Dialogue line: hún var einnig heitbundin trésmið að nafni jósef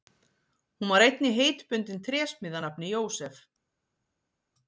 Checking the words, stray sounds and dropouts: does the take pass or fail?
pass